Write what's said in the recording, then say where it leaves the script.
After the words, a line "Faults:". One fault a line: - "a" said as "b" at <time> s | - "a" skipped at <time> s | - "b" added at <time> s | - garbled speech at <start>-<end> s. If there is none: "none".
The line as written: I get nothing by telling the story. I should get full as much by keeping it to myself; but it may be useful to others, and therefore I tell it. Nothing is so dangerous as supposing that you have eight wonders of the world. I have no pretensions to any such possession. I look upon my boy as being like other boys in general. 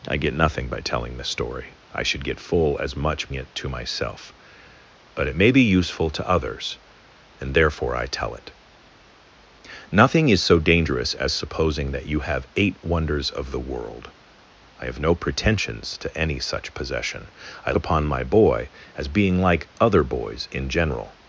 I get nothing by telling the story. I should get full as much it to myself; but it may be useful to others, and therefore I tell it. Nothing is so dangerous as supposing that you have eight wonders of the world. I have no pretensions to any such possession. I upon my boy as being like other boys in general.
Faults:
- "by keeping" skipped at 3.3 s
- "look" skipped at 17.7 s